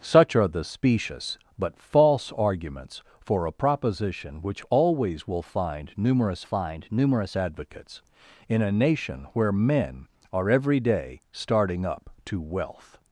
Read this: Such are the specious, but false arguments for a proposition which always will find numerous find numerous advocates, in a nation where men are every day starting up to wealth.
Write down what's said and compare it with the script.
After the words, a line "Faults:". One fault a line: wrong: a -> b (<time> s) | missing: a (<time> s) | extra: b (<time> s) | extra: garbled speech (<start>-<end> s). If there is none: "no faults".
Such are the specious, but false arguments for a proposition which always will find numerous find numerous advocates, in a nation where men are every day starting up to wealth.
Faults:
no faults